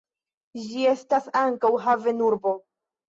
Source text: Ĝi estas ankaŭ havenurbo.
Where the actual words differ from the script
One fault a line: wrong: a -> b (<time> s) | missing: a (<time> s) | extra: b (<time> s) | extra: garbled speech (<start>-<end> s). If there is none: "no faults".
no faults